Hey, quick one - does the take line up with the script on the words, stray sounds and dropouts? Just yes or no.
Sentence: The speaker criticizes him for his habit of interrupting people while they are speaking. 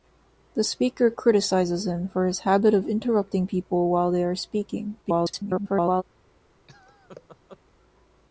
no